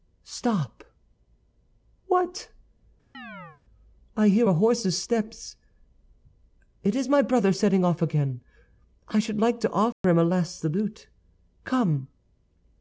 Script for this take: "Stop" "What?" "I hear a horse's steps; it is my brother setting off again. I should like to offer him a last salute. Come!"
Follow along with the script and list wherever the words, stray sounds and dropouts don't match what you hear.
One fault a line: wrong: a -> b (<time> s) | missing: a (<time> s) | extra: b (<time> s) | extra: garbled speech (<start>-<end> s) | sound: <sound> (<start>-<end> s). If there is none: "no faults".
sound: chirp (3.1-3.6 s)
sound: dropout (9.9-10.0 s)